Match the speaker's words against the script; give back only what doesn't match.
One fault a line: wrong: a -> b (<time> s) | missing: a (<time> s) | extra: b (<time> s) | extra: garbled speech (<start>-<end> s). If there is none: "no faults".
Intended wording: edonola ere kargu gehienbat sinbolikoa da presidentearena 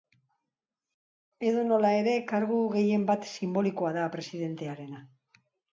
no faults